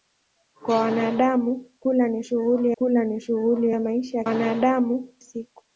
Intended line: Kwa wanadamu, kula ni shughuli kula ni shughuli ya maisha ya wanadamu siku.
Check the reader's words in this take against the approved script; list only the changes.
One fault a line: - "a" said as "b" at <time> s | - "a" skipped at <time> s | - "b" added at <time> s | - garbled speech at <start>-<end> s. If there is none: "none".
none